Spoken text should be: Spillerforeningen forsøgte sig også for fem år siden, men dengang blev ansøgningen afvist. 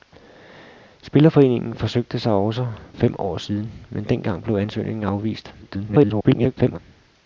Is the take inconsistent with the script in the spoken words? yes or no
yes